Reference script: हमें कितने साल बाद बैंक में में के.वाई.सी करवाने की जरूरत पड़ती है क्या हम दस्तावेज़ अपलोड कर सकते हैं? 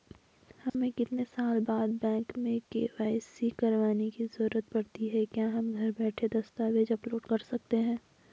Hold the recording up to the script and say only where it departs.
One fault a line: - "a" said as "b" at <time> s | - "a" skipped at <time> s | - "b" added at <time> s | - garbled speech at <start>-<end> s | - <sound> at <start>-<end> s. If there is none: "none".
- dropout at 0.7-0.7 s
- "में" skipped at 2.6 s
- "घर बैठे" added at 5.7 s